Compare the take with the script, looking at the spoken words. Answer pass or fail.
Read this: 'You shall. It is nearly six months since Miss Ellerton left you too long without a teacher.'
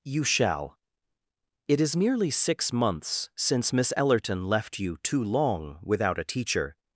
pass